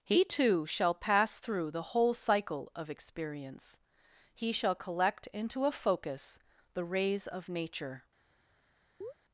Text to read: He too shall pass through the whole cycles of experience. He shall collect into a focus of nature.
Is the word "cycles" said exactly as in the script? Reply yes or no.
no